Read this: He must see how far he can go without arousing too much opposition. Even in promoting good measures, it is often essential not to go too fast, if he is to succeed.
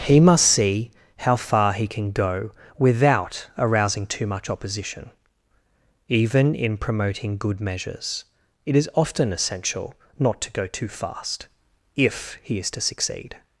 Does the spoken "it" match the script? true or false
true